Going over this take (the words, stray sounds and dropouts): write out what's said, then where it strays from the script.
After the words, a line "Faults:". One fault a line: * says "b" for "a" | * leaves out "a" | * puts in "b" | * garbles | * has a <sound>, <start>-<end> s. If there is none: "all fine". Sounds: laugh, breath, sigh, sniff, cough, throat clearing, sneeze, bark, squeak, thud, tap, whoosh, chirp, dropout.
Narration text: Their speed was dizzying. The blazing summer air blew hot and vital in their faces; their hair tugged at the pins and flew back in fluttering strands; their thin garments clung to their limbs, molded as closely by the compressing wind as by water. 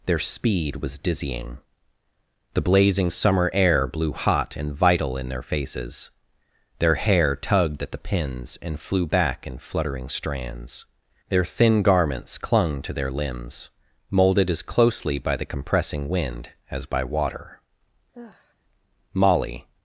Their speed was dizzying. The blazing summer air blew hot and vital in their faces; their hair tugged at the pins and flew back in fluttering strands; their thin garments clung to their limbs, molded as closely by the compressing wind as by water. Molly
Faults:
* has a sigh, 18.1-18.5 s
* puts in "Molly"